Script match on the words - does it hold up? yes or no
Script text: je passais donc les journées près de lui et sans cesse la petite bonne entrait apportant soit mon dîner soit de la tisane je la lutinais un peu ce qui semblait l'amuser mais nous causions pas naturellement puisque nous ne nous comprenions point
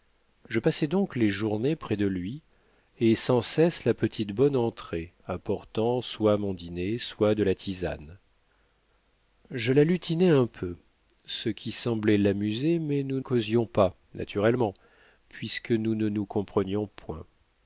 yes